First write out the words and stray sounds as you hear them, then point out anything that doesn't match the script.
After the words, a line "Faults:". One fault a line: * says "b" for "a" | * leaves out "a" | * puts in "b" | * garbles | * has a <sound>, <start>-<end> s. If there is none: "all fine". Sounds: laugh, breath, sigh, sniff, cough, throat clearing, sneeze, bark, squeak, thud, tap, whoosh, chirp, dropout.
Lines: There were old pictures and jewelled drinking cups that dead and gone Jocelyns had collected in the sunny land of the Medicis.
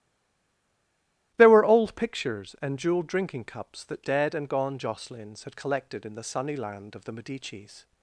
There were old pictures and jewelled drinking cups that dead and gone Jocelyns had collected in the sunny land of the Medicis.
Faults:
all fine